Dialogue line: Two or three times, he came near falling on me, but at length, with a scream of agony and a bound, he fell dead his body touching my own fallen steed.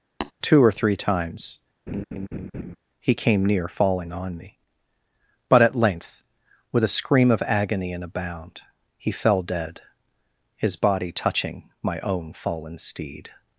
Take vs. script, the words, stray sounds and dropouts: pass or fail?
fail